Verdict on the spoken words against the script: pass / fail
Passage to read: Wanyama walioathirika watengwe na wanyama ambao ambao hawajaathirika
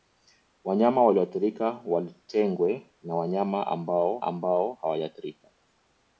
pass